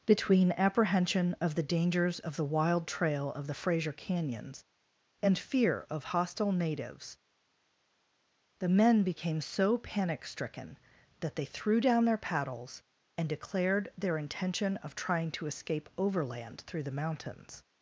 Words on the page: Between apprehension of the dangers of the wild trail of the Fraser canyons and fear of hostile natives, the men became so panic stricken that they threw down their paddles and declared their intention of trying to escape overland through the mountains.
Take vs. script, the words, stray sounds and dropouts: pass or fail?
pass